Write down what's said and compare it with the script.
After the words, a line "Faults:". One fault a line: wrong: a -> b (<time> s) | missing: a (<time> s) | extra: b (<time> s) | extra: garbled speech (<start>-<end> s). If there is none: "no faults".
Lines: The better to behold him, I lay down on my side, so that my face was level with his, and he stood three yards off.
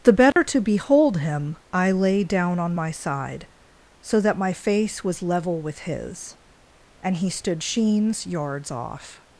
The better to behold him, I lay down on my side, so that my face was level with his, and he stood sheens yards off.
Faults:
wrong: three -> sheens (7.6 s)